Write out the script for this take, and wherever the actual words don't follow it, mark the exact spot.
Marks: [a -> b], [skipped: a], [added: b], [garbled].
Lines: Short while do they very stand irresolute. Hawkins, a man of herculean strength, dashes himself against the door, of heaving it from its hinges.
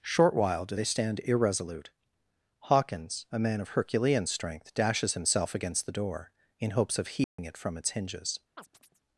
Short while do they [skipped: very] stand irresolute. Hawkins, a man of herculean strength, dashes himself against the door, [added: in hopes] of heaving it from its hinges.